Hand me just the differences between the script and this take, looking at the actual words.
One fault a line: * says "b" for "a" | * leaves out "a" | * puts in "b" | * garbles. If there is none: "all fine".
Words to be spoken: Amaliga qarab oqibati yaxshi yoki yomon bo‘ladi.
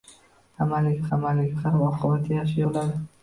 * puts in "amaliga"
* leaves out "yoki yomon"